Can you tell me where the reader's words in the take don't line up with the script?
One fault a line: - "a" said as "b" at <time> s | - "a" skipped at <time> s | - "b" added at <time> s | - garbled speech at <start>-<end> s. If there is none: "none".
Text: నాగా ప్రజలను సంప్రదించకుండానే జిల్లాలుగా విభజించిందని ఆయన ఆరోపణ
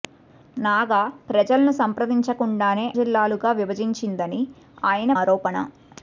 none